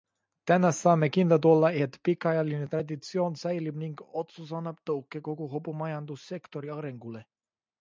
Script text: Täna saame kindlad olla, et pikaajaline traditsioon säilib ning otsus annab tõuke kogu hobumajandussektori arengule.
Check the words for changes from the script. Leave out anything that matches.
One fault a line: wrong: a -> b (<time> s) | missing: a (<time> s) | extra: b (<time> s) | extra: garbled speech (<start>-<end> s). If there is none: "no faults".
no faults